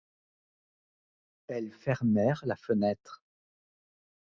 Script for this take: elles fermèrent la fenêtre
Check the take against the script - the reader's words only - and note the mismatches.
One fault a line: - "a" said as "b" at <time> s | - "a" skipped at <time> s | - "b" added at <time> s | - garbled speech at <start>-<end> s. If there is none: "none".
none